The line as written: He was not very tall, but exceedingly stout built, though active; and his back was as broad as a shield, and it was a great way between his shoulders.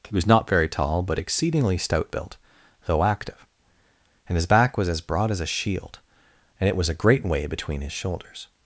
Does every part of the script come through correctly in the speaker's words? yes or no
yes